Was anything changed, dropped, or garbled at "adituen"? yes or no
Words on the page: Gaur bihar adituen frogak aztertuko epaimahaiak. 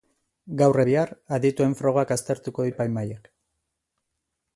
no